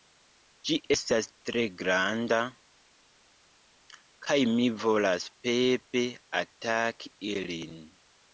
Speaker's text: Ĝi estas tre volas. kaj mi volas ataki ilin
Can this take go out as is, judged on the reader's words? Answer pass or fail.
fail